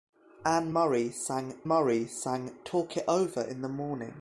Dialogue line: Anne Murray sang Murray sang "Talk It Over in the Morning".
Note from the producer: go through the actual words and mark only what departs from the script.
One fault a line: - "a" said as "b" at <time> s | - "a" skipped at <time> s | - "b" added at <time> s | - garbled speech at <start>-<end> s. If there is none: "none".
none